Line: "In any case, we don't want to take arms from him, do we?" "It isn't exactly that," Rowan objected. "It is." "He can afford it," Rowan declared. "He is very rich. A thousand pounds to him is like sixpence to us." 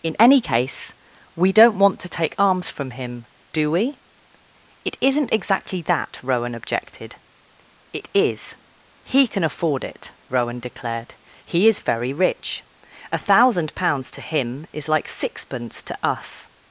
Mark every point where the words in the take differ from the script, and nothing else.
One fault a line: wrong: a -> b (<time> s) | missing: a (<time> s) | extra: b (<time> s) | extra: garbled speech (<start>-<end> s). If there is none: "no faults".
no faults